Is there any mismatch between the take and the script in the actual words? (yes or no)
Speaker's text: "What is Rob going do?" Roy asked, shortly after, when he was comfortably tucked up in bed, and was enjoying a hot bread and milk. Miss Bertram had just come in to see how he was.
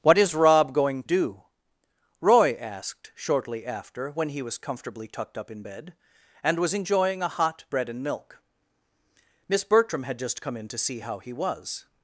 no